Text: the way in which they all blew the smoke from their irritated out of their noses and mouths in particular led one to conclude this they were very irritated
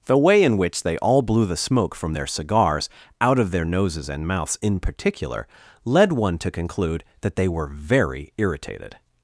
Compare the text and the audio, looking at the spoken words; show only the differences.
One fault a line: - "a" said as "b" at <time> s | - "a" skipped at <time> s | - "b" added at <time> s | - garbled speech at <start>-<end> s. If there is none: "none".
- "irritated" said as "cigars" at 2.3 s
- "this" said as "that" at 7.2 s